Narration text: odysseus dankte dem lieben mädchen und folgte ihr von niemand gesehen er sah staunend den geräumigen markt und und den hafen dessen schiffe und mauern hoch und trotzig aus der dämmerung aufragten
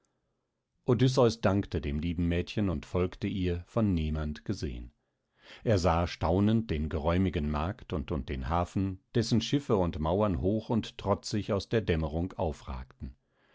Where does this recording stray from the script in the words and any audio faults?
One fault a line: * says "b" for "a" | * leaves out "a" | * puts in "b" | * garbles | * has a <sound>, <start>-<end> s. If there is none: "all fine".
all fine